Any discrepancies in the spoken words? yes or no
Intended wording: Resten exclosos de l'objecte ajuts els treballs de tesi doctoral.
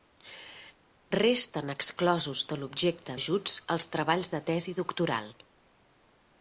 no